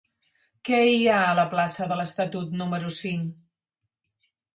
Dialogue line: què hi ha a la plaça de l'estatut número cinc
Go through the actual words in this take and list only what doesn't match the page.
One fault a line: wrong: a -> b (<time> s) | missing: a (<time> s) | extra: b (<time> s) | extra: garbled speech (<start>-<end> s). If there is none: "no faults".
no faults